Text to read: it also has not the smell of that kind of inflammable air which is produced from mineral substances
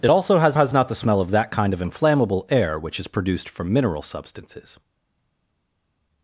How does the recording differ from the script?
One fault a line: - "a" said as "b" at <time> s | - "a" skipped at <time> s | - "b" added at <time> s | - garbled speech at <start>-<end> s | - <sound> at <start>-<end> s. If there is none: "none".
- "has" added at 0.5 s